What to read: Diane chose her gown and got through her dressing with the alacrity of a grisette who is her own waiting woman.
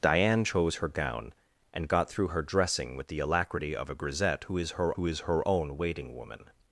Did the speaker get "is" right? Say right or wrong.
right